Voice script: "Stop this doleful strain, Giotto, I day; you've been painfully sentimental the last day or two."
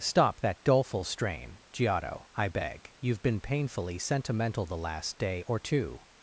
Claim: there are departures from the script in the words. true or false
true